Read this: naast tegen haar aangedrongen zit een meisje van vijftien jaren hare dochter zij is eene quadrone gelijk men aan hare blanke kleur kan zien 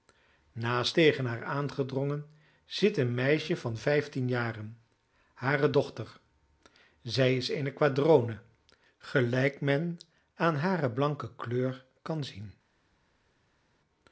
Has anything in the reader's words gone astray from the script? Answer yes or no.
no